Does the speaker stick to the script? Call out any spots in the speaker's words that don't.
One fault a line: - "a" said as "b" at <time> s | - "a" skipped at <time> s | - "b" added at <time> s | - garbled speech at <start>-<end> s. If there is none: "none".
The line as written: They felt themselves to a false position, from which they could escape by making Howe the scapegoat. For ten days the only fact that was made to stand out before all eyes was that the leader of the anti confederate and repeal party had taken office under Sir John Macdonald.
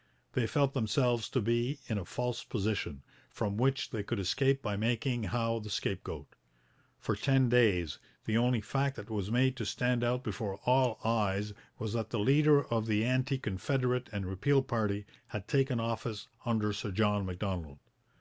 - "be in" added at 1.4 s